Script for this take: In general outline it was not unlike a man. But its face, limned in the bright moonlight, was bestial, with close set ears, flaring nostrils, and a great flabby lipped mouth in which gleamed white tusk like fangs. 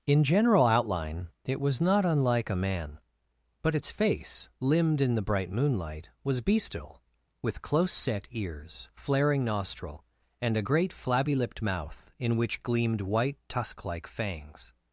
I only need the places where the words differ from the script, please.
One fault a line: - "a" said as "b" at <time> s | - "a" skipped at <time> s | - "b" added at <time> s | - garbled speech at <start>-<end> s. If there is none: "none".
- "nostrils" said as "nostril" at 9.4 s